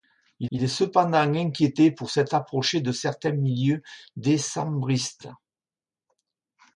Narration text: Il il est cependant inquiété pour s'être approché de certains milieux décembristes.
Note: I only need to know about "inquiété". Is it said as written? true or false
true